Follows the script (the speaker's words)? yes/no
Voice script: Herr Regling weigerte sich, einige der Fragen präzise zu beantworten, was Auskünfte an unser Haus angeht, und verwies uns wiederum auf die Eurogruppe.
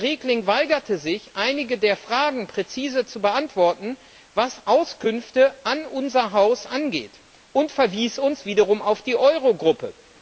yes